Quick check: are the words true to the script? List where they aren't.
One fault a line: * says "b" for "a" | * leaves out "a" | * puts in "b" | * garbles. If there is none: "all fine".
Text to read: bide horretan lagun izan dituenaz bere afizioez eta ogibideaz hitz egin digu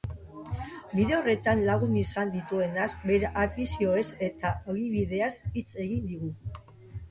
all fine